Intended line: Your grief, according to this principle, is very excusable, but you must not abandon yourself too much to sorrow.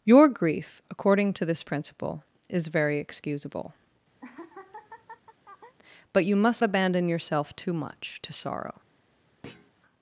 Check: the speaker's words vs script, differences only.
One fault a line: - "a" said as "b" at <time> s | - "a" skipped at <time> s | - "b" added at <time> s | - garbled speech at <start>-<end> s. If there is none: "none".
- "not" skipped at 6.6 s